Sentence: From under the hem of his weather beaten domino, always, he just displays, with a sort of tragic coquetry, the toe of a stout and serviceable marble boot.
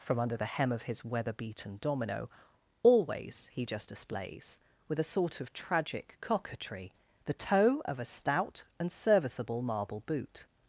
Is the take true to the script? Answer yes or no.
yes